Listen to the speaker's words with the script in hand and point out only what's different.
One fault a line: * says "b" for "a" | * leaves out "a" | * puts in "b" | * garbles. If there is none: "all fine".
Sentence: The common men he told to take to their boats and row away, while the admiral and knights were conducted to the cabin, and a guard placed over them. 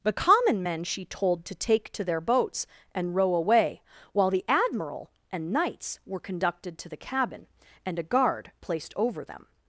* says "she" for "he"